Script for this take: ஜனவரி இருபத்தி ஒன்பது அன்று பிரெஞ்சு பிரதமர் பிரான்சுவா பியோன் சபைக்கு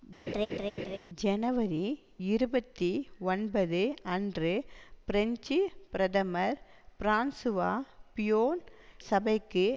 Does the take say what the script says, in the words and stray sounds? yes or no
no